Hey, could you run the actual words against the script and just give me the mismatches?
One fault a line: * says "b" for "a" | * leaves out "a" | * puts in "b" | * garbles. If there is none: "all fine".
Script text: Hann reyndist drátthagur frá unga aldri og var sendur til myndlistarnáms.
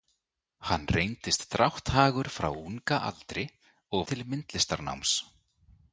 * leaves out "var sendur"